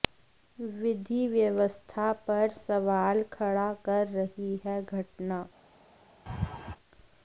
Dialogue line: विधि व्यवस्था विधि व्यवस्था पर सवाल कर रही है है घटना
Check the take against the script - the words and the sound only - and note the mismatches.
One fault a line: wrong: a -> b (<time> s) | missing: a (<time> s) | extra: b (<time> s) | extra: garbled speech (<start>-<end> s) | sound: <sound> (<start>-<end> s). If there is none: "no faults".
missing: विधि व्यवस्था (2.1 s)
extra: खड़ा (3.3 s)
missing: है (4.8 s)
sound: laugh (6.3-6.8 s)